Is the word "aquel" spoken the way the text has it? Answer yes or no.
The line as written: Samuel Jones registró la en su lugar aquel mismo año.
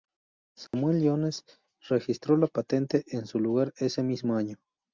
no